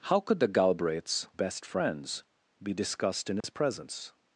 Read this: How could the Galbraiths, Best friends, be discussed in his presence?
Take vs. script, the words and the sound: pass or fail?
fail